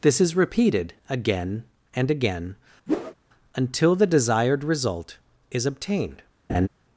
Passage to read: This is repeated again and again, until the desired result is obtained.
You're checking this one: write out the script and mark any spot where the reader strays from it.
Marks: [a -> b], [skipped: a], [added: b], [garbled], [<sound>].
This is repeated again and again, [whoosh] until the desired result is obtained. [laugh]